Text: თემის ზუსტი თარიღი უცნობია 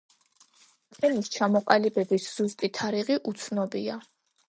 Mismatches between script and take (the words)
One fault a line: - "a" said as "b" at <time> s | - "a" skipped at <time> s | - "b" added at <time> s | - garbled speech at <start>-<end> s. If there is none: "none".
- "ჩამოყალიბების" added at 1.4 s